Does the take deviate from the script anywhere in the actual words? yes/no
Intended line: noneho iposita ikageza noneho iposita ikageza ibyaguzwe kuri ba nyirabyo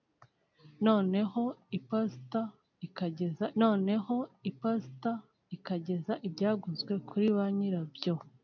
no